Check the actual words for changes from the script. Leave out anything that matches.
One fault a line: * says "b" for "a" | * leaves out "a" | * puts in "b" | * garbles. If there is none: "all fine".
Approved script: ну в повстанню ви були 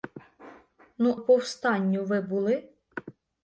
all fine